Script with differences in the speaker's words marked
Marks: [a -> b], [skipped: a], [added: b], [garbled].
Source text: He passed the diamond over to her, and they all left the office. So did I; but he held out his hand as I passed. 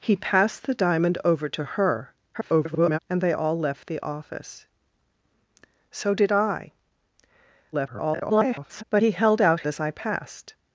He passed the diamond over to her, [garbled] and they all left the office. So did I; [garbled] but he held out [skipped: his hand] as I passed.